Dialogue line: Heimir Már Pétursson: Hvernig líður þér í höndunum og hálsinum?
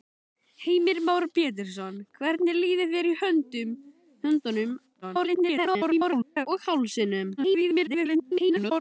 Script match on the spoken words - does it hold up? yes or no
no